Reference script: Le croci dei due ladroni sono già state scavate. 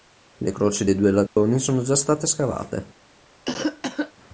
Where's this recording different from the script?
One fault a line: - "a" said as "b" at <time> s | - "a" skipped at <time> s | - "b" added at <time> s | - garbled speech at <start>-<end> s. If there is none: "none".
none